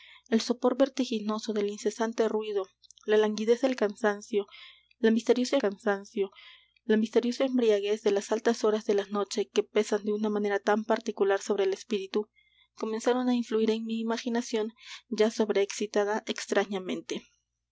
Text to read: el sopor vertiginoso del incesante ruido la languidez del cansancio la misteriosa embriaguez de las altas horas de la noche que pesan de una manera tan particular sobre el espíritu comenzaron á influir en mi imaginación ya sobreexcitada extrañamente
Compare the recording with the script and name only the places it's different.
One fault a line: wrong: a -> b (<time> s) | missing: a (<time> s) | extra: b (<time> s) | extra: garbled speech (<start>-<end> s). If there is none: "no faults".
extra: cansancio la misteriosa (5.6 s)